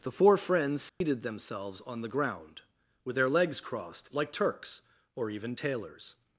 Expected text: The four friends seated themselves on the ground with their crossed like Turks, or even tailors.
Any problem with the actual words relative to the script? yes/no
yes